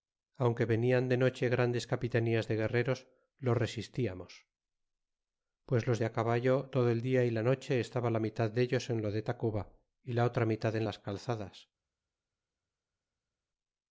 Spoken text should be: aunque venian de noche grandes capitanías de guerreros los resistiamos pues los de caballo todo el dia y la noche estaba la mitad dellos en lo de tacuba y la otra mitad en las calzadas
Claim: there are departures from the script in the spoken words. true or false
false